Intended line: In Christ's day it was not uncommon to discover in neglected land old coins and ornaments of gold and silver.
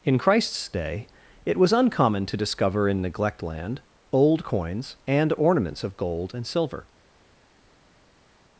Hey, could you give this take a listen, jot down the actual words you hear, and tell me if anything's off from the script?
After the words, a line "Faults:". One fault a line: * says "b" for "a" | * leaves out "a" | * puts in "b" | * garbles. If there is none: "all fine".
In Christ's day it was uncommon to discover in neglect land old coins and ornaments of gold and silver.
Faults:
* leaves out "not"
* says "neglect" for "neglected"